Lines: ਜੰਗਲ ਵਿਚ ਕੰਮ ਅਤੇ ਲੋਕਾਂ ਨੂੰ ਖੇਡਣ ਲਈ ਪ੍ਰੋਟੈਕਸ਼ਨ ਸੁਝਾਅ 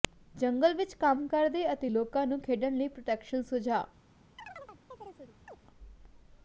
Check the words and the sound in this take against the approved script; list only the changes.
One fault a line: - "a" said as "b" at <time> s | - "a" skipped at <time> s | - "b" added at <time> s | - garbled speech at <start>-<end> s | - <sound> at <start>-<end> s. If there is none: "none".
- "ਕਰਦੇ" added at 1.3 s
- chirp at 4.4-5.6 s